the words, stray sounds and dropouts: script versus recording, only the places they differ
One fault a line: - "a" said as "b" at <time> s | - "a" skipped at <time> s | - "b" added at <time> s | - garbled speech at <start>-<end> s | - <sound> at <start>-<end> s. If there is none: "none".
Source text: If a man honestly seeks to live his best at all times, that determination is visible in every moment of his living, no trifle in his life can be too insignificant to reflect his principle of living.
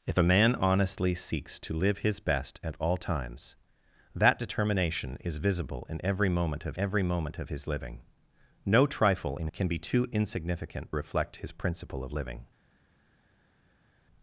- "every moment of" added at 6.8 s
- "his life" skipped at 9.5 s
- "to" skipped at 10.9 s